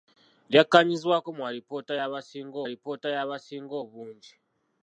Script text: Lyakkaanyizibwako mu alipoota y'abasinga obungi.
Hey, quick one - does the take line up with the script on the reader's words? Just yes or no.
no